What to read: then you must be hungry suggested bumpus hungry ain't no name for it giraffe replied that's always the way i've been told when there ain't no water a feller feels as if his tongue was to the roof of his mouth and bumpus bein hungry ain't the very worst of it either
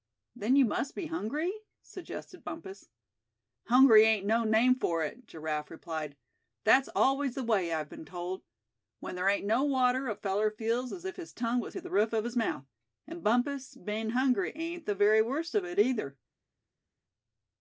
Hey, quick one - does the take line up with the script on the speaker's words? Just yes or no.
yes